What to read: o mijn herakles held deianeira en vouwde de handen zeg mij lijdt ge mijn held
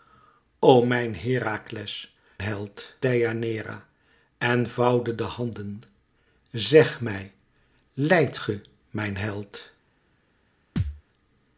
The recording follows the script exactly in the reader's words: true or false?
true